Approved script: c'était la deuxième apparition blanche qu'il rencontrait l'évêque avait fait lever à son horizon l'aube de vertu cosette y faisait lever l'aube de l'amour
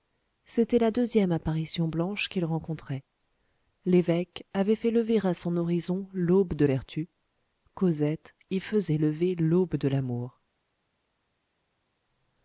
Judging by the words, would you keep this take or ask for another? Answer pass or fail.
pass